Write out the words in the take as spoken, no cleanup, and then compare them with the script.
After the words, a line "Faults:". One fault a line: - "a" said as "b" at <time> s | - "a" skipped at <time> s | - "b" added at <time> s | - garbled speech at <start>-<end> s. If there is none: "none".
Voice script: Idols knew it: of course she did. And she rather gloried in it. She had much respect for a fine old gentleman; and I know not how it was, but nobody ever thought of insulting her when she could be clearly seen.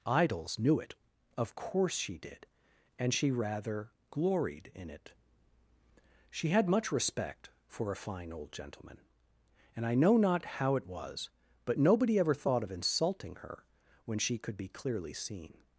Idols knew it: of course she did. And she rather gloried in it. She had much respect for a fine old gentleman; and I know not how it was, but nobody ever thought of insulting her when she could be clearly seen.
Faults:
none